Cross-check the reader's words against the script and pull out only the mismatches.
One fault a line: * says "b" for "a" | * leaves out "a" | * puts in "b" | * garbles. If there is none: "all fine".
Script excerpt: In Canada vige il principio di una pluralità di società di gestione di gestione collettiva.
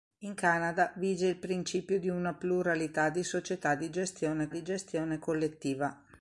all fine